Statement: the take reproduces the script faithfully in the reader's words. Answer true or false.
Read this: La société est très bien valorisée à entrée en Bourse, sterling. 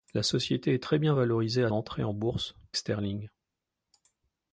true